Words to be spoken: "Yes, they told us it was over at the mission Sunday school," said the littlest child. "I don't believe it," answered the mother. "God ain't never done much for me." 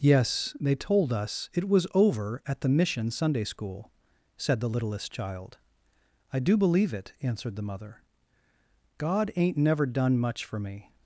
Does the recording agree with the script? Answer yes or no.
no